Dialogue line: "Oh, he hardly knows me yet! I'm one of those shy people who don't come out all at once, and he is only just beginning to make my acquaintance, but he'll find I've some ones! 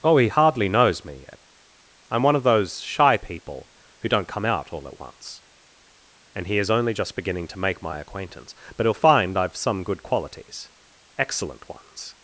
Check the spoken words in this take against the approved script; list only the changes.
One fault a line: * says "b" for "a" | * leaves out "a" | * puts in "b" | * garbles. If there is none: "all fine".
* puts in "good qualities excellent"